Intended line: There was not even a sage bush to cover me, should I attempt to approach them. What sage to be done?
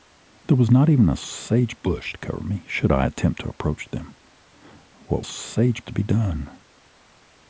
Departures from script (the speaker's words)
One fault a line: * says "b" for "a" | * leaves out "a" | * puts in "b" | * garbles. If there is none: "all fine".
all fine